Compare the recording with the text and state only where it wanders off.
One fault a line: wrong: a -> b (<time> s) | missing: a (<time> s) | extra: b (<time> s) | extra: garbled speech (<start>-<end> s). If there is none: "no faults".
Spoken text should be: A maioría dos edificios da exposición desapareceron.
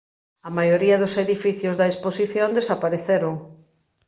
no faults